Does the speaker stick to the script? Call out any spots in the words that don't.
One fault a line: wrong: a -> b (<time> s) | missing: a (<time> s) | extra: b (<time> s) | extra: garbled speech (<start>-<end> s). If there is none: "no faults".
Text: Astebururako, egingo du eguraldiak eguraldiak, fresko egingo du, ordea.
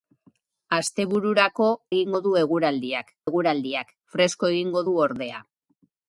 no faults